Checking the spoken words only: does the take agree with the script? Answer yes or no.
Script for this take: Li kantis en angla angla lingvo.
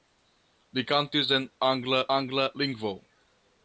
yes